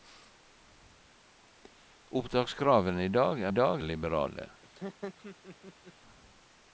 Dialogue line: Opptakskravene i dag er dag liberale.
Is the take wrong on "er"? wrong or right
right